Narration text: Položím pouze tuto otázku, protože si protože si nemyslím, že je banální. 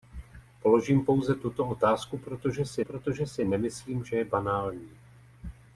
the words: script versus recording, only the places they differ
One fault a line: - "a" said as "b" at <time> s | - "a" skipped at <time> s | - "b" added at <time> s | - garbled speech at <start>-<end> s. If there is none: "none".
none